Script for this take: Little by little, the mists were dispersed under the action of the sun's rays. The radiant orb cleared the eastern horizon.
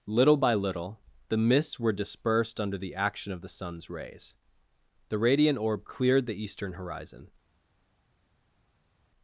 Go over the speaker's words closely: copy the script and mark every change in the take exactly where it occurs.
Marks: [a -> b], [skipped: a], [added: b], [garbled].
Little by little, the mists were dispersed under the action of the sun's rays. The radiant orb cleared the eastern horizon.